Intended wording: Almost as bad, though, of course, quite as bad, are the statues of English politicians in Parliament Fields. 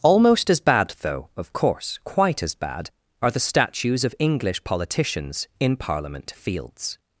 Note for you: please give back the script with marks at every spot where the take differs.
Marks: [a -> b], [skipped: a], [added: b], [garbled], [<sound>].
Almost as bad, though, of course, quite as bad, are the statues of English politicians in Parliament Fields.